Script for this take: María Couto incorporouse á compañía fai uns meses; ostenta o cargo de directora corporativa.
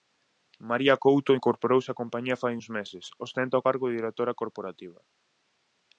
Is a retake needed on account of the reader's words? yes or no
no